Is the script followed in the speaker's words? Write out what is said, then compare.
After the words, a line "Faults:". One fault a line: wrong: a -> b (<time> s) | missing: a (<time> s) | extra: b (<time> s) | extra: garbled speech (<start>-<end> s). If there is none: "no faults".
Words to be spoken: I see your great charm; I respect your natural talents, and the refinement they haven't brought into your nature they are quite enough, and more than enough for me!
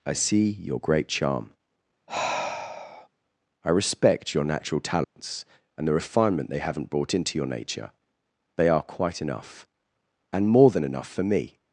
I see your great charm; I respect your natural talents, and the refinement they haven't brought into your nature they are quite enough, and more than enough for me!
Faults:
no faults